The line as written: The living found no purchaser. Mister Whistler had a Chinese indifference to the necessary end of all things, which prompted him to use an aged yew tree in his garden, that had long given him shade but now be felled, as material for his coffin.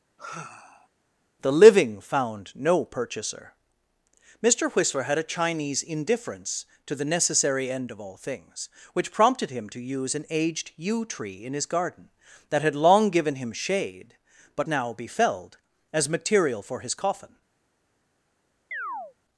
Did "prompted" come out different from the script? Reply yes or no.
no